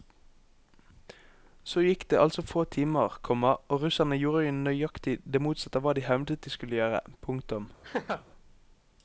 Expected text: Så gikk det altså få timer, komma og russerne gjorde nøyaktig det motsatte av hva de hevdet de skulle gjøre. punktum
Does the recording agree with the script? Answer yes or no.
yes